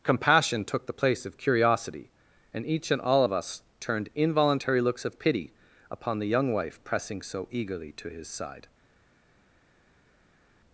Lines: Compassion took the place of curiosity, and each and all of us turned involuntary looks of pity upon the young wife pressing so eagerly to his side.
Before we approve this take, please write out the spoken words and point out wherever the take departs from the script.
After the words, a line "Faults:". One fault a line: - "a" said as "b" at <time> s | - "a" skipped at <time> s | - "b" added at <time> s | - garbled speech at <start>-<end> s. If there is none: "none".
Compassion took the place of curiosity, and each and all of us turned involuntary looks of pity upon the young wife pressing so eagerly to his side.
Faults:
none